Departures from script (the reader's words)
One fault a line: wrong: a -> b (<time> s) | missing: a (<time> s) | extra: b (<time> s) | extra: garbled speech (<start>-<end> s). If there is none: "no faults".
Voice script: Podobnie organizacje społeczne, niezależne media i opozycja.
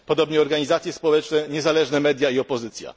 no faults